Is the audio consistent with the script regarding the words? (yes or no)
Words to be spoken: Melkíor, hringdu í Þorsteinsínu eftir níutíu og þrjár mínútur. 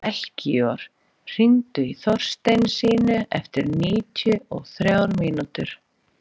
yes